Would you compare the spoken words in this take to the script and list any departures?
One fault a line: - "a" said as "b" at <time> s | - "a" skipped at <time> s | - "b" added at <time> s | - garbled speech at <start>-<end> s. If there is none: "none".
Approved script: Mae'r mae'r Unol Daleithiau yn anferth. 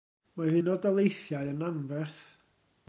- "mae'r" skipped at 0.6 s